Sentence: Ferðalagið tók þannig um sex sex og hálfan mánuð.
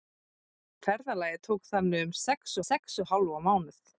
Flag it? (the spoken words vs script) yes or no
no